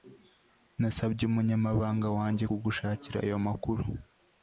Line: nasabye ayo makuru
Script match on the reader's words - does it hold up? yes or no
no